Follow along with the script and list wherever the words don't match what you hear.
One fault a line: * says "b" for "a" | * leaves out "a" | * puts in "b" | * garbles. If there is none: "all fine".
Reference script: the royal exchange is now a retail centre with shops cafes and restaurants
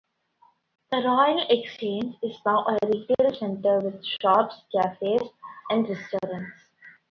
all fine